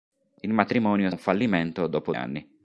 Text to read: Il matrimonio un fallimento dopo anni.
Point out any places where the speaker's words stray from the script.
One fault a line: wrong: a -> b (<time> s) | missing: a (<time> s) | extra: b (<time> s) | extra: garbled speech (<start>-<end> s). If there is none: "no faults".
no faults